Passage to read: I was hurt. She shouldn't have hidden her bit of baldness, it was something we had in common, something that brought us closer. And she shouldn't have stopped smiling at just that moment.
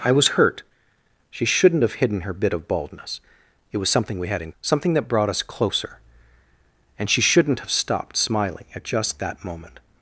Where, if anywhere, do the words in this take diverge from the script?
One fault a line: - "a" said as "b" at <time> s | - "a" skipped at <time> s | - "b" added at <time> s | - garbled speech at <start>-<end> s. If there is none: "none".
- "common" skipped at 4.5 s